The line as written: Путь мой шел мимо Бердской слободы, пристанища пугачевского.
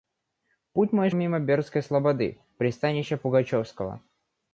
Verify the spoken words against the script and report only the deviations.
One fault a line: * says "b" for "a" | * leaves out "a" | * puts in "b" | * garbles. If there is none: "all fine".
* leaves out "шел"